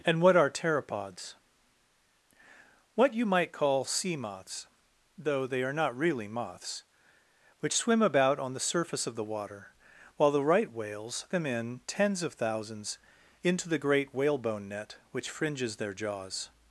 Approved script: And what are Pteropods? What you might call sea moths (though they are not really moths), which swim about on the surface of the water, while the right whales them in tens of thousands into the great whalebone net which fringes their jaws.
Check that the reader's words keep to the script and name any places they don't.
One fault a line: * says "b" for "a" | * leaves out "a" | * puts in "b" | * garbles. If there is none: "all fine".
all fine